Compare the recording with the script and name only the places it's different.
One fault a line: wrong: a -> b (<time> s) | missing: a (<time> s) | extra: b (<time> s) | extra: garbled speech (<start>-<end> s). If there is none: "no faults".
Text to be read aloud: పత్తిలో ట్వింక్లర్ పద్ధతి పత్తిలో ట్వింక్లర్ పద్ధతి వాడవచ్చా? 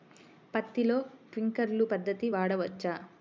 missing: పత్తిలో ట్వింక్లర్ పద్ధతి (2.3 s)